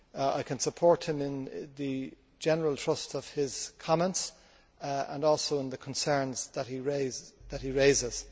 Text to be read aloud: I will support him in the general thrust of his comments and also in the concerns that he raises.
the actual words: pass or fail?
fail